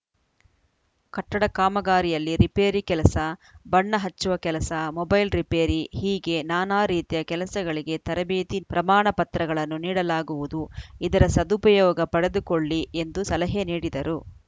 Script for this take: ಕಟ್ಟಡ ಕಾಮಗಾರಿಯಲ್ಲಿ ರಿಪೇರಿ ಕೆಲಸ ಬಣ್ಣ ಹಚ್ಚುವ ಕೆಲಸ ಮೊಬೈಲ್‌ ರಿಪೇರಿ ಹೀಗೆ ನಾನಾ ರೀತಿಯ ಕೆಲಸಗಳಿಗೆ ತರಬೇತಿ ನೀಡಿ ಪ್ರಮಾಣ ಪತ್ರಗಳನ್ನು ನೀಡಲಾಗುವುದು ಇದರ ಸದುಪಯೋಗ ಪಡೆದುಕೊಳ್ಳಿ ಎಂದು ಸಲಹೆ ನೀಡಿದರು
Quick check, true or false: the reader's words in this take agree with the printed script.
false